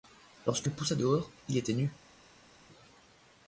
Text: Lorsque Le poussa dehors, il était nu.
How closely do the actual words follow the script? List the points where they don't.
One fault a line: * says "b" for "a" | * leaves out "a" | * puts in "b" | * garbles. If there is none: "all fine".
all fine